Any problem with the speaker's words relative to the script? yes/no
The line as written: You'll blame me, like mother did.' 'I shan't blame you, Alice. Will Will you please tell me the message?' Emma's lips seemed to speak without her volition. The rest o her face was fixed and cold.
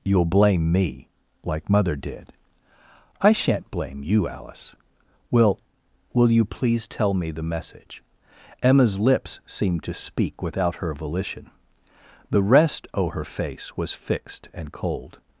no